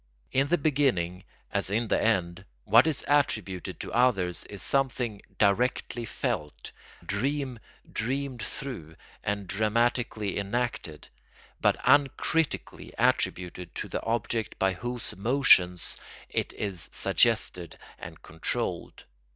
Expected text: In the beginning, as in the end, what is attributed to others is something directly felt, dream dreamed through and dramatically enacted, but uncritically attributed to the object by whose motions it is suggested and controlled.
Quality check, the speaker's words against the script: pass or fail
pass